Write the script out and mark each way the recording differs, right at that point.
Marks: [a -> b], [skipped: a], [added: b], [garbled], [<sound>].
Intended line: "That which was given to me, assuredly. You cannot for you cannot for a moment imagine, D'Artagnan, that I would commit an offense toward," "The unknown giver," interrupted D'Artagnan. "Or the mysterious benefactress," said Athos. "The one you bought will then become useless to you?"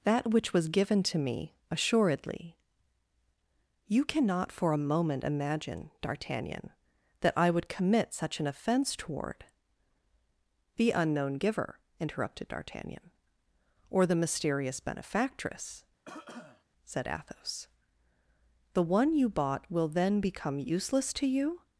"That which was given to me, assuredly. You cannot for [skipped: you cannot for] a moment imagine, D'Artagnan, that I would commit [added: such] an offense toward," "The unknown giver," interrupted D'Artagnan. "Or the mysterious benefactress," [cough] said Athos. "The one you bought will then become useless to you?"